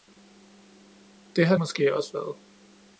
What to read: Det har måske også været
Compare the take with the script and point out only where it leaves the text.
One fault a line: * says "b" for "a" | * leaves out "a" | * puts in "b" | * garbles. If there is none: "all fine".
all fine